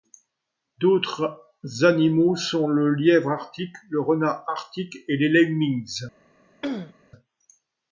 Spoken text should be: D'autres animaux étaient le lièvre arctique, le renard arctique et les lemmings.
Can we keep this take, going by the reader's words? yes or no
no